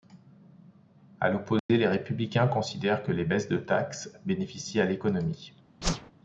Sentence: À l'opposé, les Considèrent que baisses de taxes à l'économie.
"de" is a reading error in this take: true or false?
false